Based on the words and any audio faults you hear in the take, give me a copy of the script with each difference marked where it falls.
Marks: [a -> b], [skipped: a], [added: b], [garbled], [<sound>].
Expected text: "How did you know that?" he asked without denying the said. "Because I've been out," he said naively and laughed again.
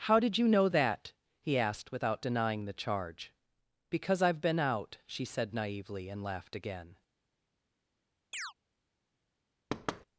"How did you know that?" he asked without denying the [said. -> charge] "Because I've been out," [he -> she] said naively and laughed again. [chirp] [thud]